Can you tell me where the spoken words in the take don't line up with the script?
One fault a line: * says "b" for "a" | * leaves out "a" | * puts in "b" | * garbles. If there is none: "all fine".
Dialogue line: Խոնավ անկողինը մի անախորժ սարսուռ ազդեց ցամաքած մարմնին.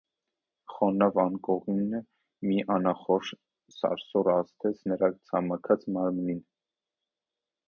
* puts in "նրա"